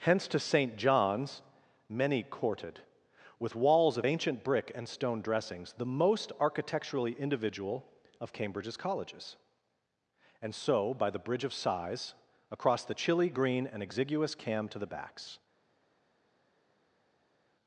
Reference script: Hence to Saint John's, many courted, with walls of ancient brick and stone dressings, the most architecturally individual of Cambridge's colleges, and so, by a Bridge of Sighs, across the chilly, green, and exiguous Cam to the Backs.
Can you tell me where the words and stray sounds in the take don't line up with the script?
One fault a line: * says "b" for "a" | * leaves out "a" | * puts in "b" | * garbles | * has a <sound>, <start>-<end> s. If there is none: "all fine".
* says "the" for "a"